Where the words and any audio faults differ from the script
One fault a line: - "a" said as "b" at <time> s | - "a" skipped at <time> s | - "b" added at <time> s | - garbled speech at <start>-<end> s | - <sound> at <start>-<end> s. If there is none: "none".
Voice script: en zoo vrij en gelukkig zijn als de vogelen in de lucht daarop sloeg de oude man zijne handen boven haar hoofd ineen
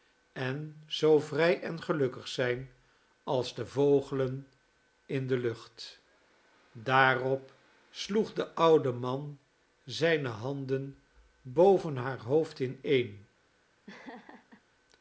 - laugh at 13.9-14.6 s